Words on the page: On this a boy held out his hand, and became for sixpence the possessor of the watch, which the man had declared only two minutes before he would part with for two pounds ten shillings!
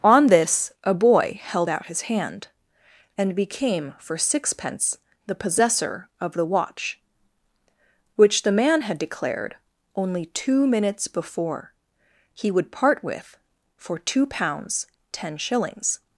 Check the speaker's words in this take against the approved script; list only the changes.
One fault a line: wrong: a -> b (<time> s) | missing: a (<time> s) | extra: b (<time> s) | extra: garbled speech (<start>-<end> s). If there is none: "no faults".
no faults